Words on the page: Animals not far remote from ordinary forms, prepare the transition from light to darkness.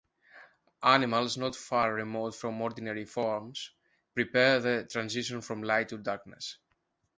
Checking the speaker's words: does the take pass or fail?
pass